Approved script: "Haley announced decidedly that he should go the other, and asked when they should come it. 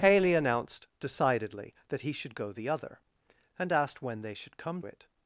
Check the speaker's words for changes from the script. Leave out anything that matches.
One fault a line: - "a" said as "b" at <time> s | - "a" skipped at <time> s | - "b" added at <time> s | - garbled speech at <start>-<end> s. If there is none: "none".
none